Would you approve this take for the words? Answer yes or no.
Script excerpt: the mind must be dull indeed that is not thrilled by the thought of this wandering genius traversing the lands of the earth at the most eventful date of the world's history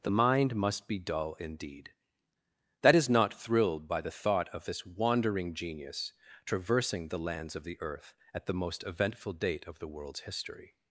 yes